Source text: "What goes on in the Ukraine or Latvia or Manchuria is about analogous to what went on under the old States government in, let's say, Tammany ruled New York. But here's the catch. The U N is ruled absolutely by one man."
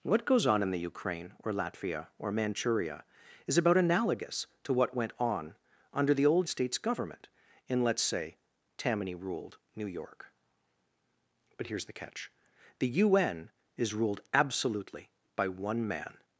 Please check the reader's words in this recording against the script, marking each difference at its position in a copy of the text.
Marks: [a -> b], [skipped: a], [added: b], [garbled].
"What goes on in the Ukraine or Latvia or Manchuria is about analogous to what went on under the old States government in, let's say, Tammany ruled New York. But here's the catch. The U N is ruled absolutely by one man."